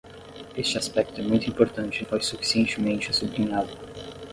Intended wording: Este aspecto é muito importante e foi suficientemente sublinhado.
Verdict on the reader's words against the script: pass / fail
pass